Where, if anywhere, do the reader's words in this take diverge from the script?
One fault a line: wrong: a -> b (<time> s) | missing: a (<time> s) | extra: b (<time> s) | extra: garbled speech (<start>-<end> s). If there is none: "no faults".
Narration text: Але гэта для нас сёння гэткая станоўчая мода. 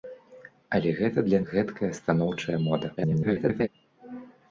missing: нас сёння (1.4 s)
extra: garbled speech (3.0-3.7 s)